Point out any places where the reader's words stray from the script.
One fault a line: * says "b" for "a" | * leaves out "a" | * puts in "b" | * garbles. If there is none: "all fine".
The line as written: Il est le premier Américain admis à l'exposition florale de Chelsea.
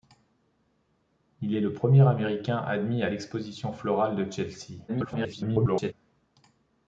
* garbles